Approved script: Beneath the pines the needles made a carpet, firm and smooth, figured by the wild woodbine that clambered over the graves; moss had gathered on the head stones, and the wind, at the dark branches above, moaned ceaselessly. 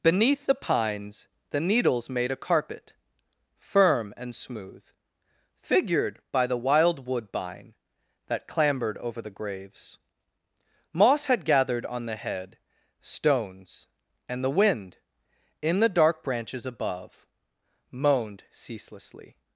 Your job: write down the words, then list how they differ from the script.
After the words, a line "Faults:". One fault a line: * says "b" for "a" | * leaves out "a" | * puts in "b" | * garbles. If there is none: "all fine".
Beneath the pines the needles made a carpet, firm and smooth, figured by the wild woodbine that clambered over the graves; moss had gathered on the head stones, and the wind, in the dark branches above, moaned ceaselessly.
Faults:
* says "in" for "at"